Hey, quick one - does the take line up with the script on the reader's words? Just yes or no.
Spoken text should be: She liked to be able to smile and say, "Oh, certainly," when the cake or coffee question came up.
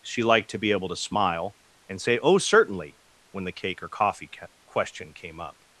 yes